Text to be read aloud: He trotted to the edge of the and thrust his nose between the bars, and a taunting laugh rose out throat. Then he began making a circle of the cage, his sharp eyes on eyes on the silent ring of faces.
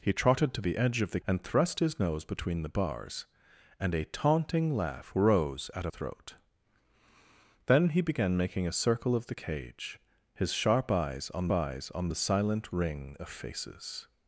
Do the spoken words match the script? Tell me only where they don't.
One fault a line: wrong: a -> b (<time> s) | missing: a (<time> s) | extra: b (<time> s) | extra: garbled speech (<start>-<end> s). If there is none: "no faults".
no faults